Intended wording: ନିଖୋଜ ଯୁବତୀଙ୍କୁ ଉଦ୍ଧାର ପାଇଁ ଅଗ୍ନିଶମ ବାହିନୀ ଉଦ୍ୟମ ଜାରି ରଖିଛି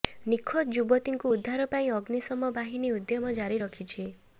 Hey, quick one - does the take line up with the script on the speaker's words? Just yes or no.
yes